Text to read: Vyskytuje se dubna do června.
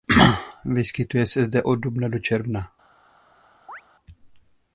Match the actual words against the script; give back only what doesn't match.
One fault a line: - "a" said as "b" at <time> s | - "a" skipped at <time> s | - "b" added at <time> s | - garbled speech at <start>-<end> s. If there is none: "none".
- "zde od" added at 1.4 s